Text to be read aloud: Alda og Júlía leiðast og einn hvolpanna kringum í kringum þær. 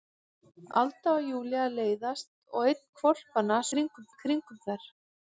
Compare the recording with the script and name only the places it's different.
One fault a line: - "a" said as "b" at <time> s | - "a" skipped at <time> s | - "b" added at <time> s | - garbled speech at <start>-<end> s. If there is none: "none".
none